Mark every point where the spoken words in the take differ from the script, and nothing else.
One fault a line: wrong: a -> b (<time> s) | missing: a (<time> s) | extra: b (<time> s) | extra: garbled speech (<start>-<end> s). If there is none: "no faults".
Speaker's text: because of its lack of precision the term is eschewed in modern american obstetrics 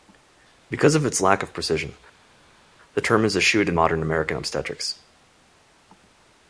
no faults